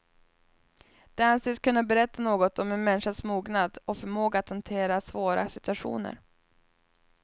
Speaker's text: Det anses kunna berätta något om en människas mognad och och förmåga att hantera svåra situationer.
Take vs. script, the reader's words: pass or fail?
fail